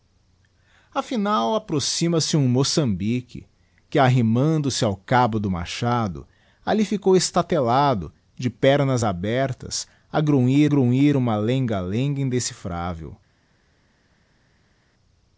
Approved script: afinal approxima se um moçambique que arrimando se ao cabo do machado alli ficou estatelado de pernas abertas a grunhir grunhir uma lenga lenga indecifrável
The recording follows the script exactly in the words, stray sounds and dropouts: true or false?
true